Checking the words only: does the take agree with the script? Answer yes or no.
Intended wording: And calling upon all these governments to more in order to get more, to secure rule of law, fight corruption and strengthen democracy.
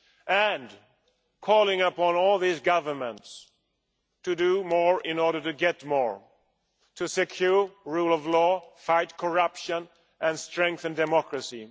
no